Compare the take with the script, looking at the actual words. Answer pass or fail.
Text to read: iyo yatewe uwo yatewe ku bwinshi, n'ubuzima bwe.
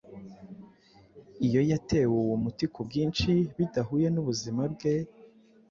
fail